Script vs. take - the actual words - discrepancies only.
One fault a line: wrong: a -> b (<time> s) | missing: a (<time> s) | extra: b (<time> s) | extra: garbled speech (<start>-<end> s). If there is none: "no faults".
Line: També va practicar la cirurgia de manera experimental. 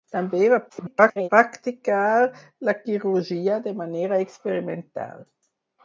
extra: garbled speech (0.7-1.3 s)